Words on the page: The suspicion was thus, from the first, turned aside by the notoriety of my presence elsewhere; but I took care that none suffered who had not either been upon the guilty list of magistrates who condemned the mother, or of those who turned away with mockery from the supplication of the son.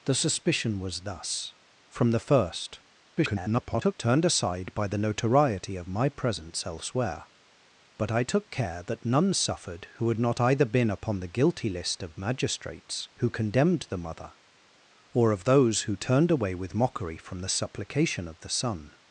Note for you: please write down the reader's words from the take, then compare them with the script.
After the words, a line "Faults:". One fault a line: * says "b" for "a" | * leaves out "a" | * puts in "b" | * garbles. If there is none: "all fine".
The suspicion was thus, from the first, [garbled] turned aside by the notoriety of my presence elsewhere; but I took care that none suffered who had not either been upon the guilty list of magistrates who condemned the mother, or of those who turned away with mockery from the supplication of the son.
Faults:
* garbles